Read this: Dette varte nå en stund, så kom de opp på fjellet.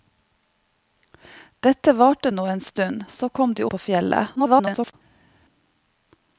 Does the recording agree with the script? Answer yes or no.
no